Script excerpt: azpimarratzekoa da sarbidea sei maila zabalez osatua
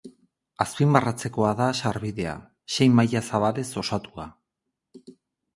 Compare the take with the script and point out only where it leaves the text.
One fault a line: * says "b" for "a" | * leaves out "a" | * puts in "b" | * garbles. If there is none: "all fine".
all fine